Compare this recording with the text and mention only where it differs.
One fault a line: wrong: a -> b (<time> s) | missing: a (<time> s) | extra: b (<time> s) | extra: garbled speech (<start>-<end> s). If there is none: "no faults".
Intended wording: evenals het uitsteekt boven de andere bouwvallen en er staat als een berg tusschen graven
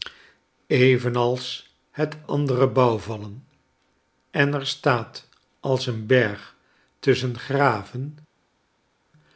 missing: uitsteekt boven de (2.2 s)